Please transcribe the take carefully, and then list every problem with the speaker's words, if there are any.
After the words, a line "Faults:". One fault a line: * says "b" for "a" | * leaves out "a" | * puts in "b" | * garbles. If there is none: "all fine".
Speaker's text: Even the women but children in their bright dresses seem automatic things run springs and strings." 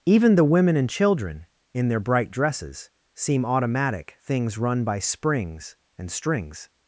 Even the women and children in their bright dresses seem automatic things run by springs and strings."
Faults:
* says "and" for "but"
* puts in "by"